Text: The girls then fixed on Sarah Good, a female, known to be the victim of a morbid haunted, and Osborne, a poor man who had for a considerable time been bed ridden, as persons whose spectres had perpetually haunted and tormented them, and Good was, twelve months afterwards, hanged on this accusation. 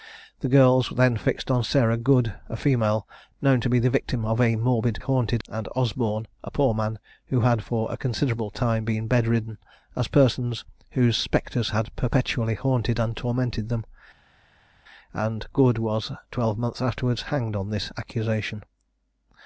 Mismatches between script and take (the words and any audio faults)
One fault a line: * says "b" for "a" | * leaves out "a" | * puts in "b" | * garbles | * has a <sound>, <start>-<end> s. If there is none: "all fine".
all fine